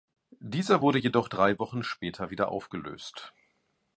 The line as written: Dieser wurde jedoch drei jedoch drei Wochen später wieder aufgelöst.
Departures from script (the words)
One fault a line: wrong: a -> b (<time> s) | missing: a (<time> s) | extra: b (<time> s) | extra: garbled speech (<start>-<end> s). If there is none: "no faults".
missing: jedoch drei (1.6 s)